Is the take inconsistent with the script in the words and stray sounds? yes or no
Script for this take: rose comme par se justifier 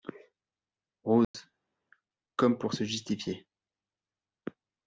yes